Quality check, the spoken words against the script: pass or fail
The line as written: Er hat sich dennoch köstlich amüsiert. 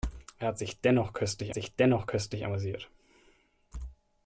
fail